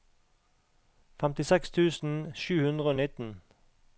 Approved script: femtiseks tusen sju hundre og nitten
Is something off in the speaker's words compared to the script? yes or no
no